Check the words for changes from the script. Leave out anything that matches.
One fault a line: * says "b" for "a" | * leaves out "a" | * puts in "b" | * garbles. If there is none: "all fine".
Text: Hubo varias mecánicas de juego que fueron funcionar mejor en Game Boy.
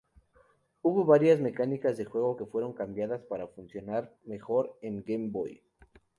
* puts in "cambiadas para"